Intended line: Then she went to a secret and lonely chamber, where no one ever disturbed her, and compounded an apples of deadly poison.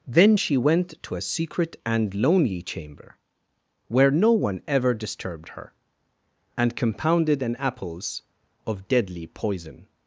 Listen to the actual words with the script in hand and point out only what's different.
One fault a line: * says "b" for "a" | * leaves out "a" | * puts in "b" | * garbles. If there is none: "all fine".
all fine